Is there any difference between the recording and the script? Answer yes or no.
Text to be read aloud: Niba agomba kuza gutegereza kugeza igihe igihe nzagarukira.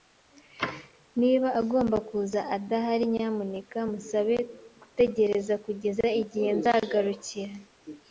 yes